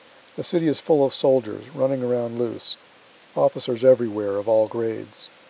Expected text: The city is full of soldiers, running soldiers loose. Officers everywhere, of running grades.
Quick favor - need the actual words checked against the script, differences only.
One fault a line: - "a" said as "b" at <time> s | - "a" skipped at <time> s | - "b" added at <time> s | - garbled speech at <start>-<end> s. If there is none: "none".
- "soldiers" said as "around" at 2.0 s
- "running" said as "all" at 4.5 s